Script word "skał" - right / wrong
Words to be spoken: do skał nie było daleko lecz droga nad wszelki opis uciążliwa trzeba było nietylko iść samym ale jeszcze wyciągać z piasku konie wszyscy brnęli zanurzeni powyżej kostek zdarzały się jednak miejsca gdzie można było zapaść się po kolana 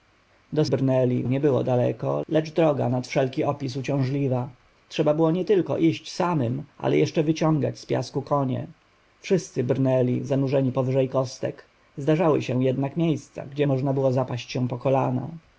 wrong